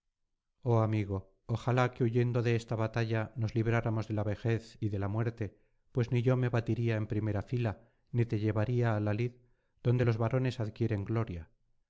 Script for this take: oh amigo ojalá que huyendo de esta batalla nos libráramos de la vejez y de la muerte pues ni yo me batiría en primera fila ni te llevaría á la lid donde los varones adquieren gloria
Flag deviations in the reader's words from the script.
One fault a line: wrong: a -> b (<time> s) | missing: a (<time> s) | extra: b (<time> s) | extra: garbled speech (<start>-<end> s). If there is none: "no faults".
no faults